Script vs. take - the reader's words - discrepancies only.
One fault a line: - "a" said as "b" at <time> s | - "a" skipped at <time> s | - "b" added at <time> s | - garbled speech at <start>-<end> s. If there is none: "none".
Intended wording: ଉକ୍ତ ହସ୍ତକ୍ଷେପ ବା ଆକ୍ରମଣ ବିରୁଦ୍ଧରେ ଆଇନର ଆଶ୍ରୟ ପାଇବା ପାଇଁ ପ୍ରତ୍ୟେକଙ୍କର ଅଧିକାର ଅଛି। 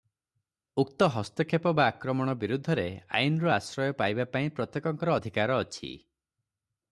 none